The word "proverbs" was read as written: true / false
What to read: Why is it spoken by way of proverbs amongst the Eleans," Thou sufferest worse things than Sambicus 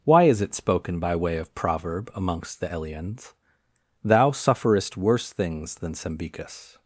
false